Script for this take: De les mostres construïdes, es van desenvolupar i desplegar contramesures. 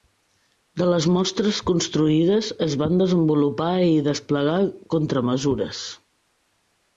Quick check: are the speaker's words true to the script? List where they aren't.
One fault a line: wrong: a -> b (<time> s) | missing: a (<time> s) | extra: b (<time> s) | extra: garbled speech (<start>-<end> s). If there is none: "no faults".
no faults